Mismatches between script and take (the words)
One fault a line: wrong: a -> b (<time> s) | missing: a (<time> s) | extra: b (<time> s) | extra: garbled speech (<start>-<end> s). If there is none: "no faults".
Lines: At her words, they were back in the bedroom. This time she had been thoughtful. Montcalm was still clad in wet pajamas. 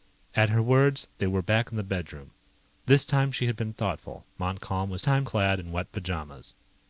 wrong: still -> time (5.0 s)